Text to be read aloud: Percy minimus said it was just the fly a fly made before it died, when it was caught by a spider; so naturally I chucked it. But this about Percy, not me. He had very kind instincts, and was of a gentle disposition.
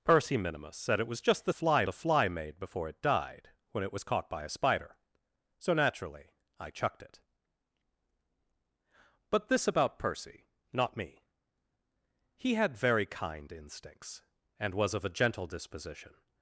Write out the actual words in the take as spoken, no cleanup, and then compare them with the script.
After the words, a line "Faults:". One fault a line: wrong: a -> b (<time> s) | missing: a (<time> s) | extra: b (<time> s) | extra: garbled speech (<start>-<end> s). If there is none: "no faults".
Percy minimus said it was just the fly a fly made before it died, when it was caught by a spider; so naturally I chucked it. But this about Percy, not me. He had very kind instincts, and was of a gentle disposition.
Faults:
no faults